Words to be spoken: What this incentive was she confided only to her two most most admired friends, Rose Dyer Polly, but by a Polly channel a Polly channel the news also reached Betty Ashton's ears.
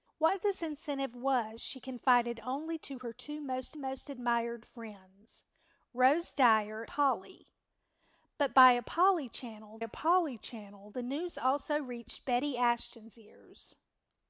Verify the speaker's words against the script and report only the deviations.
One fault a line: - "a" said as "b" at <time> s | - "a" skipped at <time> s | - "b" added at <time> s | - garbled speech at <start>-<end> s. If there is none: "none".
none